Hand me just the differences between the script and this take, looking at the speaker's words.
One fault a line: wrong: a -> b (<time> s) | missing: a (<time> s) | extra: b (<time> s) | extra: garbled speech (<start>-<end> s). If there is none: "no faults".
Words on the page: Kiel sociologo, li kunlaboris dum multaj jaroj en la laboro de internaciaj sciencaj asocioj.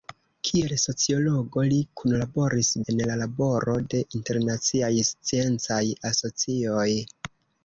missing: dum multaj jaroj (2.7 s)